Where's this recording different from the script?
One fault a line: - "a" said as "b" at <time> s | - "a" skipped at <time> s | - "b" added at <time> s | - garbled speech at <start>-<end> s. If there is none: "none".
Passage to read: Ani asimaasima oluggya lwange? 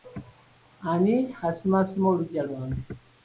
none